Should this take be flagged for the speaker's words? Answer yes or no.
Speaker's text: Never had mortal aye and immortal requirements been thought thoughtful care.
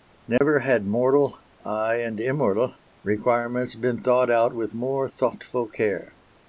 yes